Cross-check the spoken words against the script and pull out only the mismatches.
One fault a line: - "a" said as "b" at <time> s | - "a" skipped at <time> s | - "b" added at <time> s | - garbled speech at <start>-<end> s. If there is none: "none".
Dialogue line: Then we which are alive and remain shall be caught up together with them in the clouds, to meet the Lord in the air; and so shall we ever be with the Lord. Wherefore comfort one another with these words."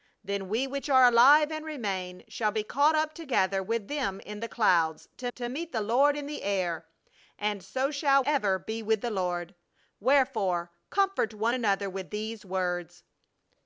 - "to" added at 5.3 s
- "we" skipped at 8.2 s